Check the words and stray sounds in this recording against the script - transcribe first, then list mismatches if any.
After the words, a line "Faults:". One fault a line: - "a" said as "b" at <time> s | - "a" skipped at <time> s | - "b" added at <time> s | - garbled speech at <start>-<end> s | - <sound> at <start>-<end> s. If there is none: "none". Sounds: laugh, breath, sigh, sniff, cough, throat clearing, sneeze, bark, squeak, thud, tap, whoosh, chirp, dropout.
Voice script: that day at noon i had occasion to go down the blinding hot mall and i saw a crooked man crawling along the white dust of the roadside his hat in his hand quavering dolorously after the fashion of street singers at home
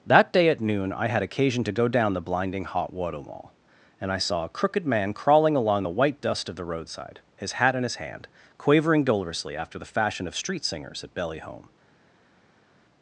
that day at noon i had occasion to go down the blinding hot water mall and i saw a crooked man crawling along the white dust of the roadside his hat in his hand quavering dolorously after the fashion of street singers at belly home
Faults:
- "water" added at 2.9 s
- "belly" added at 11.1 s